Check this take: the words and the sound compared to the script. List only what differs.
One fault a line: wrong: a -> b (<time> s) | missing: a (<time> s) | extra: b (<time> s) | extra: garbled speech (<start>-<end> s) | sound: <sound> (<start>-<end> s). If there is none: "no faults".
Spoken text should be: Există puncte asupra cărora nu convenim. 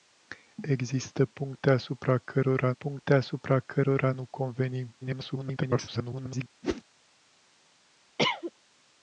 extra: puncte asupra cărora (2.7 s)
extra: garbled speech (5.0-6.5 s)
sound: whoosh (6.6-6.8 s)
sound: cough (8.2-8.5 s)